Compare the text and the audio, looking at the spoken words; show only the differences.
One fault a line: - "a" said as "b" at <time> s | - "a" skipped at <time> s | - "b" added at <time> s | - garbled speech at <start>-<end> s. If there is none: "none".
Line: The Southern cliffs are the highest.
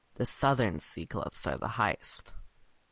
- "sea" added at 0.8 s